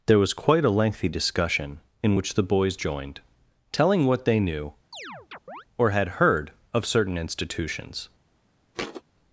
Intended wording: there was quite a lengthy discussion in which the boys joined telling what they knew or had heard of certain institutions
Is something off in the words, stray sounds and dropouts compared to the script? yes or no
yes